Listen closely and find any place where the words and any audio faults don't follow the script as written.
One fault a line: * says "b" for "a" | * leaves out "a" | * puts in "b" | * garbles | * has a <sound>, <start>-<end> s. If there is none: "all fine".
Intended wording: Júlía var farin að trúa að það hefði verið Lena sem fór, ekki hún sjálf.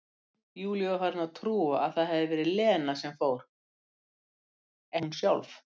* leaves out "ekki"